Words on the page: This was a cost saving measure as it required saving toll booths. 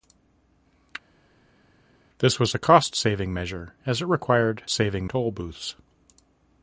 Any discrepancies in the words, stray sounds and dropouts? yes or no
no